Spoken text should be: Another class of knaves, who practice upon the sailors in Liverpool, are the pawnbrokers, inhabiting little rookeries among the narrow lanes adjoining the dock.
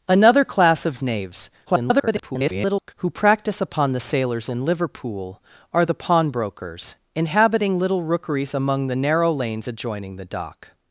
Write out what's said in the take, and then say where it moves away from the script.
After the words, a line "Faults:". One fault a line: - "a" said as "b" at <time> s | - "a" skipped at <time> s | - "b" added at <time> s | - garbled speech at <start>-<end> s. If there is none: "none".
Another class of knaves, [garbled] who practice upon the sailors in Liverpool, are the pawnbrokers, inhabiting little rookeries among the narrow lanes adjoining the dock.
Faults:
- garbled speech at 1.7-2.9 s